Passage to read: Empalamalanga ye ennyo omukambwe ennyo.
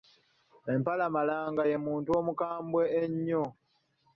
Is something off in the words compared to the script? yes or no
yes